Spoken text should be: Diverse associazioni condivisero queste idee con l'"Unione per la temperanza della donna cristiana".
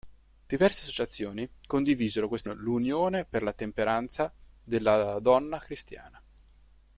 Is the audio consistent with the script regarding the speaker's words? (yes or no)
no